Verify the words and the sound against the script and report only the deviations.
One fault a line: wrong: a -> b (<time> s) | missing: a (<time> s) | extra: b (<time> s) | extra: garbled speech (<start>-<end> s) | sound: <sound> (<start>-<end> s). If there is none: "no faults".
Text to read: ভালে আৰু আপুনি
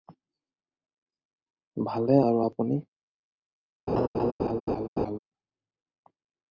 sound: laugh (3.9-5.2 s)